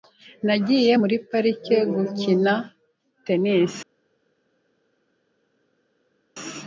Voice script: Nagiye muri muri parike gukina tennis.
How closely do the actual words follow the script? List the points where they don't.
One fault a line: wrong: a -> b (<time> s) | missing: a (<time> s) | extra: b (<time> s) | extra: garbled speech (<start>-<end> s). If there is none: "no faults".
missing: muri (1.1 s)